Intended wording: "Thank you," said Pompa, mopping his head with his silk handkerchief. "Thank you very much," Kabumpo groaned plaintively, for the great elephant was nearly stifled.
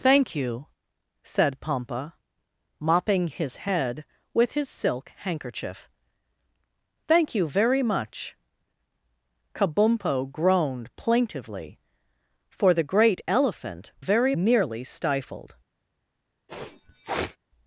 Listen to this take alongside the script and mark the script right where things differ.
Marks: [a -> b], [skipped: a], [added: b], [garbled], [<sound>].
"Thank you," said Pompa, mopping his head with his silk handkerchief. "Thank you very much," Kabumpo groaned plaintively, for the great elephant [was -> very] nearly stifled. [sneeze]